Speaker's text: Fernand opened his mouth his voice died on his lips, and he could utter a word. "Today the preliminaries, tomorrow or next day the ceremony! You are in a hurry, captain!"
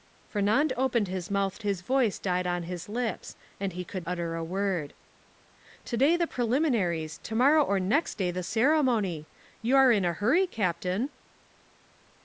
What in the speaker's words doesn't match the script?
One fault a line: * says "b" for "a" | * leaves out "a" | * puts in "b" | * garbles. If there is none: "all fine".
all fine